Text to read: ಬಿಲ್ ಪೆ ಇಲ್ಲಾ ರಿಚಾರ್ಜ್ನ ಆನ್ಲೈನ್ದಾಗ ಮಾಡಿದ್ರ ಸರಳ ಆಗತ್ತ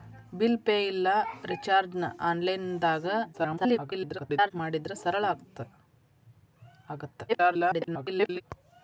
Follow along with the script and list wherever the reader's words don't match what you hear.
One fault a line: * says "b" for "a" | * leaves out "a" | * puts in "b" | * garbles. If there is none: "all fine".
* garbles
* garbles